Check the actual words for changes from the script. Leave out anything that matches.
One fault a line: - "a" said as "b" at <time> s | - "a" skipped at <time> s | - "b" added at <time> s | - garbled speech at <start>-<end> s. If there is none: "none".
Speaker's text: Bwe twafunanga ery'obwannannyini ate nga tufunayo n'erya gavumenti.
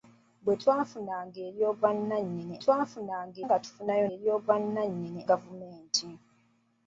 - "ate" said as "twafunanga" at 2.6 s
- "n'erya" said as "ery'obwannannyini" at 4.1 s